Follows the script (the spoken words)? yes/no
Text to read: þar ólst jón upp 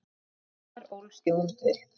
yes